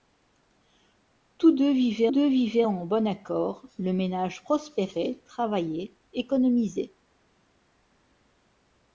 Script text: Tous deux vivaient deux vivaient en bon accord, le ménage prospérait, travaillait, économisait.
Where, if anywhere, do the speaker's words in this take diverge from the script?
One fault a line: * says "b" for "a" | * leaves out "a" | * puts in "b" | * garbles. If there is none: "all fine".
all fine